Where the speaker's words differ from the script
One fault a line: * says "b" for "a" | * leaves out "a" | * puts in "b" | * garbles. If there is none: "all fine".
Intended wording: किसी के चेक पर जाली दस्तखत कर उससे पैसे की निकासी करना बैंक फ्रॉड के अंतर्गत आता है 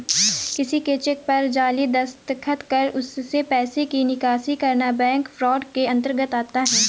all fine